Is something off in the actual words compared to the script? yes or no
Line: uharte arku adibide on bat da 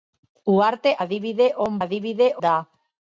yes